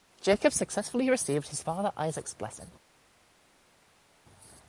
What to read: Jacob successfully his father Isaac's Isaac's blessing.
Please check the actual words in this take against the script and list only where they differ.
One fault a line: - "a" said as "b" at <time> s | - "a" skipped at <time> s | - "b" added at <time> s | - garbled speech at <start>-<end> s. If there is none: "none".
- "received" added at 1.1 s
- "Isaac's" skipped at 2.3 s